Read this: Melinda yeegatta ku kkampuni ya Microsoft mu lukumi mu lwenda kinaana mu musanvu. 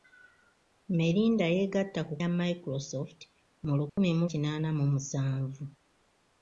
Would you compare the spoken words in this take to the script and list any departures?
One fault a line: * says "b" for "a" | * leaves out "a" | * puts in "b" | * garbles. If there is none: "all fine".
* leaves out "kkampuni"
* leaves out "lwenda"